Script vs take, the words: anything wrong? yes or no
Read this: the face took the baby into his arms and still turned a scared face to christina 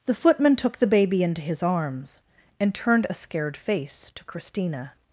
yes